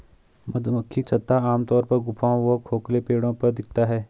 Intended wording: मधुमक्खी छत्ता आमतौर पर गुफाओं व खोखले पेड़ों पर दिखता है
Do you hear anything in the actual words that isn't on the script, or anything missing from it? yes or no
no